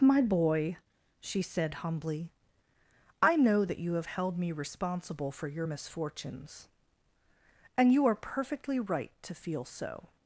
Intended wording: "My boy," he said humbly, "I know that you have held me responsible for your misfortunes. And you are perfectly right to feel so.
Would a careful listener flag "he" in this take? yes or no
yes